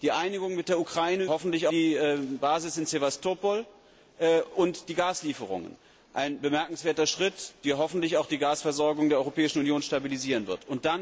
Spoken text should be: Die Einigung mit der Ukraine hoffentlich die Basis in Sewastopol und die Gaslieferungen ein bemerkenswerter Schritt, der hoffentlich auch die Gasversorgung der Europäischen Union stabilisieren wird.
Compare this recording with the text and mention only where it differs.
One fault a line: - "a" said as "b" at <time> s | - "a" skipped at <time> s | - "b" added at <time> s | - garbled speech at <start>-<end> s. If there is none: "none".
none